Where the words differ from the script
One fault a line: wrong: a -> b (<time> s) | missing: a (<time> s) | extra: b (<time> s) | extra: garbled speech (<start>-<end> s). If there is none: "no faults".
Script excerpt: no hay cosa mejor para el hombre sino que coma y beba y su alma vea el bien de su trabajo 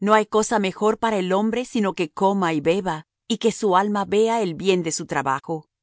extra: que (3.4 s)